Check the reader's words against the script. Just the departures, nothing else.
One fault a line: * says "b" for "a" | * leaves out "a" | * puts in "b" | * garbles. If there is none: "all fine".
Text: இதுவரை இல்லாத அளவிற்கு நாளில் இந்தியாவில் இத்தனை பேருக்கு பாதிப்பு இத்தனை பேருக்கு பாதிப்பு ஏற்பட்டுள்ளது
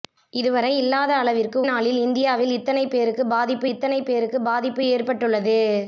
all fine